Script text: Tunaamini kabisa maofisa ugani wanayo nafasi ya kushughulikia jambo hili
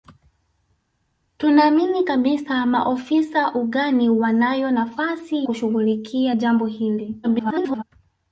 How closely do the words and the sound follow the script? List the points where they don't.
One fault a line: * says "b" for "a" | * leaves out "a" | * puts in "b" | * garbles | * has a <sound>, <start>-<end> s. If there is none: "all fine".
* leaves out "ya"
* garbles